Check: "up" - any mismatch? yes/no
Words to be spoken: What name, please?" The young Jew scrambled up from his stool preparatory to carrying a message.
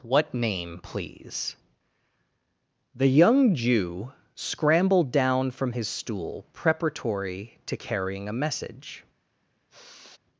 yes